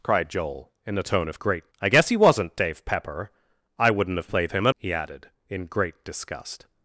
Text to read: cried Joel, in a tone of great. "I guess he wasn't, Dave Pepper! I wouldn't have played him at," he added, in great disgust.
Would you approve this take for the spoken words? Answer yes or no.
yes